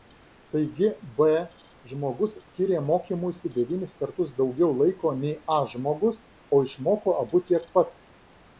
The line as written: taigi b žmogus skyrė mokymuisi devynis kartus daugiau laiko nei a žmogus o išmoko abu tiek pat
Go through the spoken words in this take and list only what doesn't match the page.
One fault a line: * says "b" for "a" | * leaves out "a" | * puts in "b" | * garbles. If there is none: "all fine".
all fine